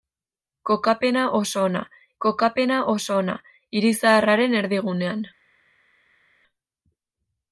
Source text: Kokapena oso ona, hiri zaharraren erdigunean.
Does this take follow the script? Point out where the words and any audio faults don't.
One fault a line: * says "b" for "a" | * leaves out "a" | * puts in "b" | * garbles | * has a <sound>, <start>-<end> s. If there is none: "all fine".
* puts in "kokapena oso ona"